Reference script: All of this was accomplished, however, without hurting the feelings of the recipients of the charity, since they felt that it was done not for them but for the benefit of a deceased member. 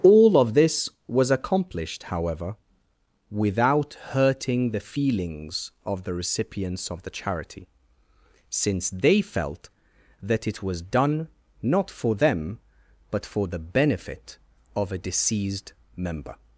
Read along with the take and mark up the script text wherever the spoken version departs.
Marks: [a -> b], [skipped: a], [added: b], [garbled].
All of this was accomplished, however, without hurting the feelings of the recipients of the charity, since they felt that it was done not for them but for the benefit of a deceased member.